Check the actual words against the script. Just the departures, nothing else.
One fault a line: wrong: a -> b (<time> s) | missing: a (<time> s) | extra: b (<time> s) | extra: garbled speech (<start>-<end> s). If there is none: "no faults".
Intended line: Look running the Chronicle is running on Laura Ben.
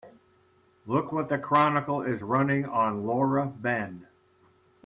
wrong: running -> what (1.1 s)